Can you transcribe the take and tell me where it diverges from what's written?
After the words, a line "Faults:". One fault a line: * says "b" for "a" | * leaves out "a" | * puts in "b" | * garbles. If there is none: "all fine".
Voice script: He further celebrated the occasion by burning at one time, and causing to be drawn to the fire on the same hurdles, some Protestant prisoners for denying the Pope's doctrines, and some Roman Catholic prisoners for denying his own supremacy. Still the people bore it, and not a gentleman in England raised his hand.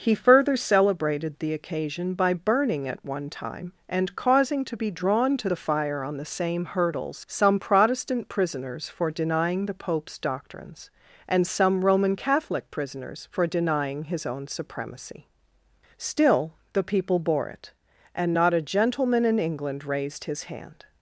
He further celebrated the occasion by burning at one time, and causing to be drawn to the fire on the same hurdles, some Protestant prisoners for denying the Pope's doctrines, and some Roman Catholic prisoners for denying his own supremacy. Still the people bore it, and not a gentleman in England raised his hand.
Faults:
all fine